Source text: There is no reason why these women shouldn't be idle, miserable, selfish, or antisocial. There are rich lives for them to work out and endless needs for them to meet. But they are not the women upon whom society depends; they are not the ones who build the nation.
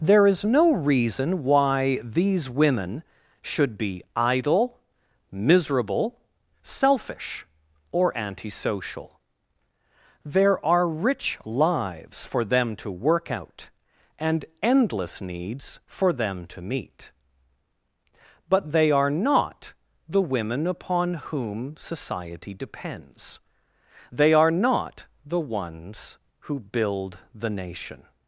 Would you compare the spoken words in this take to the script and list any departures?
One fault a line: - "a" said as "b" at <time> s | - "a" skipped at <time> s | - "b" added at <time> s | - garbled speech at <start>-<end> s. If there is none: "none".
- "shouldn't" said as "should" at 3.4 s